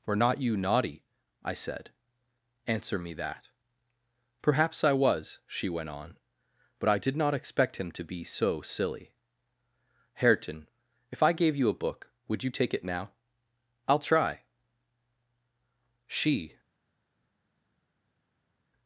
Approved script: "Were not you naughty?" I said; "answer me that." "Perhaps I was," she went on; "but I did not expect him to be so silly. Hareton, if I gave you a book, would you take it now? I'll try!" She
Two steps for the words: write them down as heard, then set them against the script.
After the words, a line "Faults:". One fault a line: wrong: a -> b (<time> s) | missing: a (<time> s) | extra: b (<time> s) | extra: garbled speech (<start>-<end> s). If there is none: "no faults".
"Were not you naughty?" I said; "answer me that." "Perhaps I was," she went on; "but I did not expect him to be so silly. Hareton, if I gave you a book, would you take it now? I'll try!" She
Faults:
no faults